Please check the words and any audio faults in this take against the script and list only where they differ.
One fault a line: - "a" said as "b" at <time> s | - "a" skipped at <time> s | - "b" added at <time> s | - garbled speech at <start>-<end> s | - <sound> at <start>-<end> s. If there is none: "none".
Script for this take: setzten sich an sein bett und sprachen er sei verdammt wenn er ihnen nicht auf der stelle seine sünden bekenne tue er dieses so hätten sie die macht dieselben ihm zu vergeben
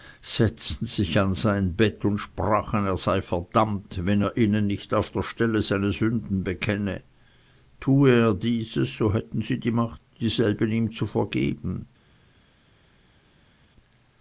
none